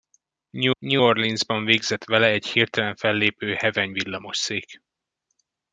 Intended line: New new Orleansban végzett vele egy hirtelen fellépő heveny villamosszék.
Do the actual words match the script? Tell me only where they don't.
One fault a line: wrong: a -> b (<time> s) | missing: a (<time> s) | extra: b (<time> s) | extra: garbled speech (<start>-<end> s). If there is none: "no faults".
no faults